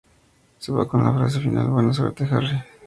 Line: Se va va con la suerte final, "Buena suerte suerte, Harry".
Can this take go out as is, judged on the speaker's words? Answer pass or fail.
fail